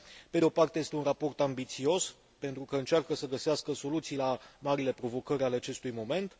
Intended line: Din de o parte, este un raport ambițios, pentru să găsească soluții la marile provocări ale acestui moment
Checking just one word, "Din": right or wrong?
wrong